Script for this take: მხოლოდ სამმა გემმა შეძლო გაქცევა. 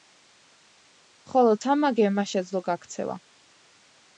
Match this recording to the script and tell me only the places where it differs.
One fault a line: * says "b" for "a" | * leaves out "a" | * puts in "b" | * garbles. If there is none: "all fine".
all fine